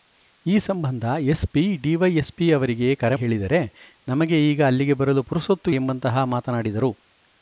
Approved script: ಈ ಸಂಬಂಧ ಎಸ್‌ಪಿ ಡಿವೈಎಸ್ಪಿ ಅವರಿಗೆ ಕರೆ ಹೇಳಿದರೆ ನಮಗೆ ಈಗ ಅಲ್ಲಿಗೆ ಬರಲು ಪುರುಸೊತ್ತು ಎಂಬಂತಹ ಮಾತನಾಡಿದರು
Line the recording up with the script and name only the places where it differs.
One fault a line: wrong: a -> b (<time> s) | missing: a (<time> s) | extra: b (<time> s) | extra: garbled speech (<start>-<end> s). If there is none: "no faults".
no faults